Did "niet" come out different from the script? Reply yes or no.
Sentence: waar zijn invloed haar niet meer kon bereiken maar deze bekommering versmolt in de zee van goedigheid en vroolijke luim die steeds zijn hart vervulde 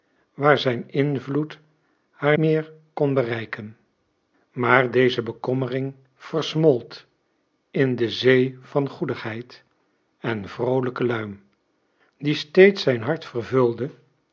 yes